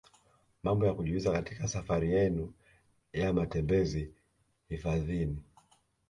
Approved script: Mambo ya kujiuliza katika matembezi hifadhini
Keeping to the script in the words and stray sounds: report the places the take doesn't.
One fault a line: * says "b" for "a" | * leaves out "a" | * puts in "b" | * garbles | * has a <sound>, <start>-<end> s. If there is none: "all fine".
* puts in "safari yenu ya"